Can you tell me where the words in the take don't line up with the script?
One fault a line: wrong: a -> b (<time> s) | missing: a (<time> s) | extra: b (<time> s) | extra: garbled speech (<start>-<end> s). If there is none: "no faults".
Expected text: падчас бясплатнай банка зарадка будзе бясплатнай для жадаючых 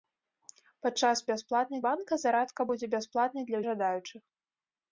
no faults